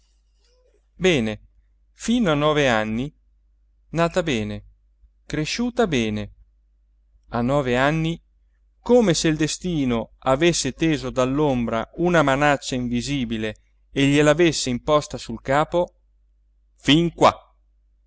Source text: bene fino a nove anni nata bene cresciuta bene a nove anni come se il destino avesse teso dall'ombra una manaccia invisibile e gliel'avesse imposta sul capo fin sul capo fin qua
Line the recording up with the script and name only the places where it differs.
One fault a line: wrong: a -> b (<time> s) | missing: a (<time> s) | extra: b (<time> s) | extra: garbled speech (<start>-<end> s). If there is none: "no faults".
missing: sul capo fin (17.1 s)